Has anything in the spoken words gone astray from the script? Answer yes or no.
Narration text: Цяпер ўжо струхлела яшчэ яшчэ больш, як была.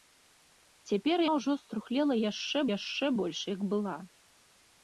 no